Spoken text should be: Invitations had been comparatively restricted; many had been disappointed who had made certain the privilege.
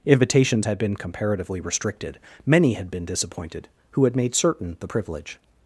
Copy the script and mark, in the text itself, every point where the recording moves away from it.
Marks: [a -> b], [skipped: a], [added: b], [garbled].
Invitations had been comparatively restricted; many had been disappointed who had made certain the privilege.